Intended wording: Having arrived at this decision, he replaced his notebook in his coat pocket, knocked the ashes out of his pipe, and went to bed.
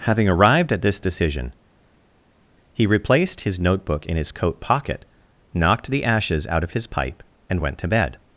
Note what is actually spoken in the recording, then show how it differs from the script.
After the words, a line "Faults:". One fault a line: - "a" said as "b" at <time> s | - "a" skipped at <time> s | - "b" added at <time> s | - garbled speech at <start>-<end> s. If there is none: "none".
Having arrived at this decision, he replaced his notebook in his coat pocket, knocked the ashes out of his pipe, and went to bed.
Faults:
none